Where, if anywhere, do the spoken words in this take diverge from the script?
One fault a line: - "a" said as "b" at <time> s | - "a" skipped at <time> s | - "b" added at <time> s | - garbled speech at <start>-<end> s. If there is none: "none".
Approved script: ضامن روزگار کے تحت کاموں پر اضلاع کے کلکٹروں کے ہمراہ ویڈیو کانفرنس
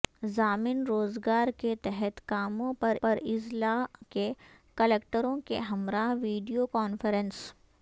- "پر" added at 3.0 s